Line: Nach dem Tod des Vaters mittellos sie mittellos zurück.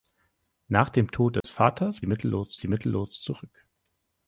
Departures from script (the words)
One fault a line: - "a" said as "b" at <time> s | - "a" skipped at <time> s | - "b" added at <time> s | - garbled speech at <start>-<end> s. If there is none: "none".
none